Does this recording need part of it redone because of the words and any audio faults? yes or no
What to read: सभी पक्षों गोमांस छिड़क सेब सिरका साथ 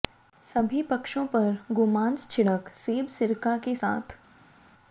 yes